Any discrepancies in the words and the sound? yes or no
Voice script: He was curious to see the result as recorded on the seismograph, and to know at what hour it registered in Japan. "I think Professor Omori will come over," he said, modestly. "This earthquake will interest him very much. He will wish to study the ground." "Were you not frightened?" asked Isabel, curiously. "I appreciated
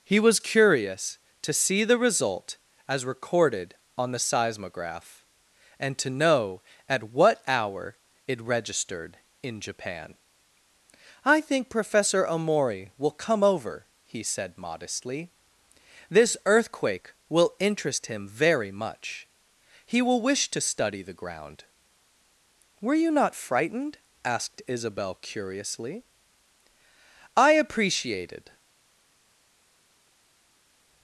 no